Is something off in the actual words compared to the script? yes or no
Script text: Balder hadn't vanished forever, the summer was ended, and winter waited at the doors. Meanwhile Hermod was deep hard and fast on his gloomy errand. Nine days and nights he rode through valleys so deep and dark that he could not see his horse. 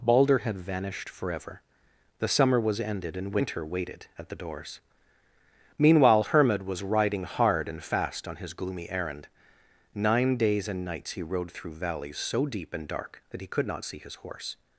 yes